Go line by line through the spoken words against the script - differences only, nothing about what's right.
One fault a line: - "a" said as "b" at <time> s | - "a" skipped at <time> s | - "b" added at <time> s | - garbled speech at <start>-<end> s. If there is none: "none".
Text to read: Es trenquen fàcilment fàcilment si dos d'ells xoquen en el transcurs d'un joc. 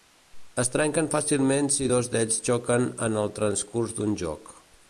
- "fàcilment" skipped at 1.7 s